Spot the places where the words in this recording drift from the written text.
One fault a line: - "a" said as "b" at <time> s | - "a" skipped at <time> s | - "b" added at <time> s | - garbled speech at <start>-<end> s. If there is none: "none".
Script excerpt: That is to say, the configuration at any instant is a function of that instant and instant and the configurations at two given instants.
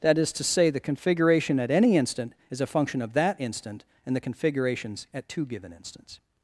- "instant and" skipped at 4.1 s